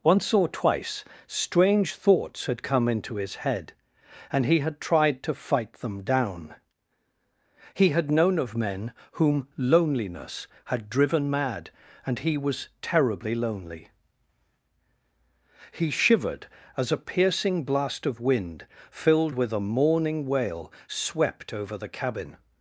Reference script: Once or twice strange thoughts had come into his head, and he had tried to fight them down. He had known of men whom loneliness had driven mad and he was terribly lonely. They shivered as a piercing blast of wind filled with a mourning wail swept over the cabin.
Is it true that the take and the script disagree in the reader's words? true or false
true